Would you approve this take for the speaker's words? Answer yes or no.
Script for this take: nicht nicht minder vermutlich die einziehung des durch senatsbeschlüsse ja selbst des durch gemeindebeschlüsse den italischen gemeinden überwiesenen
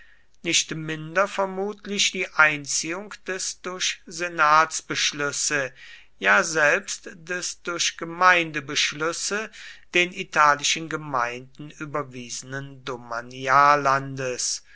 no